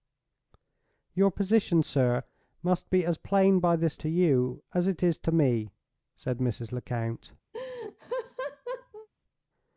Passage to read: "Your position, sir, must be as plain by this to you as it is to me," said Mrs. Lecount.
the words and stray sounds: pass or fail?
fail